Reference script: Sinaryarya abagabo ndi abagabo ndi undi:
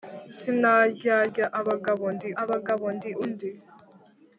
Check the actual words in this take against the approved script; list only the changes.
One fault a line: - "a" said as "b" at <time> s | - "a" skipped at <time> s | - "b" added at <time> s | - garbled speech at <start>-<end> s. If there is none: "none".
none